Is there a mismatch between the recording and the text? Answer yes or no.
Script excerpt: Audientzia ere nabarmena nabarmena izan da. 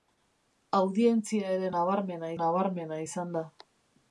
no